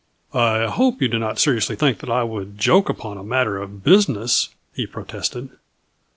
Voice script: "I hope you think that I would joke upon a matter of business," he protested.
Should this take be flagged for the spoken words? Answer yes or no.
yes